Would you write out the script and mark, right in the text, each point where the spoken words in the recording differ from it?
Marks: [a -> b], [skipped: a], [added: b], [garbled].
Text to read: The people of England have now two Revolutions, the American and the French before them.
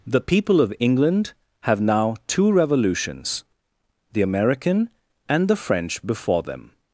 The people of England have now two Revolutions, the American and the French before them.